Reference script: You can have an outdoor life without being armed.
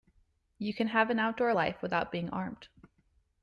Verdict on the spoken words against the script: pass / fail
pass